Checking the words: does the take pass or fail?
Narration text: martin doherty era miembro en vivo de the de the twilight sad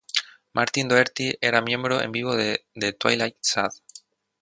fail